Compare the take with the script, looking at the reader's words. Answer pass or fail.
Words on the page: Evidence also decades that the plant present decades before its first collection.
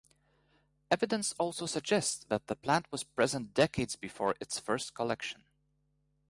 fail